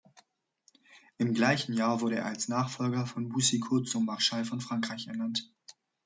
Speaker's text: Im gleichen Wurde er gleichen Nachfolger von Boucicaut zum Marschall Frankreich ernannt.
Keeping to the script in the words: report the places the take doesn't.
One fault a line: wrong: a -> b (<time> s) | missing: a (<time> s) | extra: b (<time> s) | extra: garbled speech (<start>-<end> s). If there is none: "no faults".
extra: Jahr (1.7 s)
wrong: gleichen -> als (2.2 s)
extra: von (4.5 s)